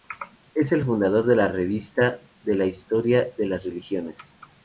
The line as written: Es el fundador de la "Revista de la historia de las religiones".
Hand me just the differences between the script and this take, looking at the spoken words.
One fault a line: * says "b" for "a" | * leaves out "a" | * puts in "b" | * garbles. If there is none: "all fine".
all fine